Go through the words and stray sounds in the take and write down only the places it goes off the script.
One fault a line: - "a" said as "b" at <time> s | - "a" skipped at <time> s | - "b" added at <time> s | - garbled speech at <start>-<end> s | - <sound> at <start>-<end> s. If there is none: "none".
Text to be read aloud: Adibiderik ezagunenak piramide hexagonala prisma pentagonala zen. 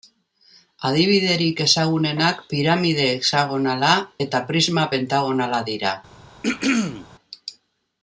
- "eta" added at 4.3 s
- "zen" said as "dira" at 5.7 s
- throat clearing at 6.4-7.1 s